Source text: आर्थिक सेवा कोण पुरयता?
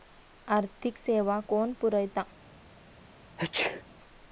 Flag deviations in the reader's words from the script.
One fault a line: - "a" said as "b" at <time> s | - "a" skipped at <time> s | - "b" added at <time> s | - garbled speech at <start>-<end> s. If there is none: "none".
none